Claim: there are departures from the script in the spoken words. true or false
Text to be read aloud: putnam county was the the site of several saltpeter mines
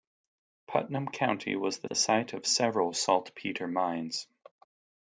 false